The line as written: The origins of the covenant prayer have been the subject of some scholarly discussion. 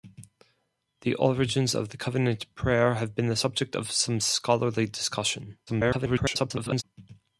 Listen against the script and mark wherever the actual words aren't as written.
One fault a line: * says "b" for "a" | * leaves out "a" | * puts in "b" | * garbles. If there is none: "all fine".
* garbles